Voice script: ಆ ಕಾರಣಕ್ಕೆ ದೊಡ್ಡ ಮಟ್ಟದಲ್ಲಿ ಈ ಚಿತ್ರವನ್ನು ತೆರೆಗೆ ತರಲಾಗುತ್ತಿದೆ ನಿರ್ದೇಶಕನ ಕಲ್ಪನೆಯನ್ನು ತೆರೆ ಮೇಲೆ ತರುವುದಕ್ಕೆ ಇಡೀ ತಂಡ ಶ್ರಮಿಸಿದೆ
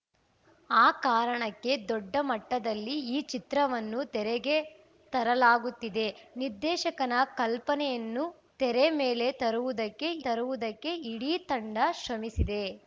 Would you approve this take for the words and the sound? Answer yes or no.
no